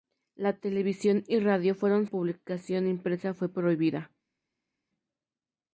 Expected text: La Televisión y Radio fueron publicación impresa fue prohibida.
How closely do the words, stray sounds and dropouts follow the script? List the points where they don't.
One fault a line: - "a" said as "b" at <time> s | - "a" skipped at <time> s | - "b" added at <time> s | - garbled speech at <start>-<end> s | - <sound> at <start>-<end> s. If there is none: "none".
none